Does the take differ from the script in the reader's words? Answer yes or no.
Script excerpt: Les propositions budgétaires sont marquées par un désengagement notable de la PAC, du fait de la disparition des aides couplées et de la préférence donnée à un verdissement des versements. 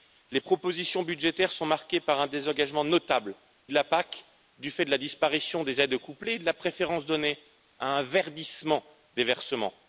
no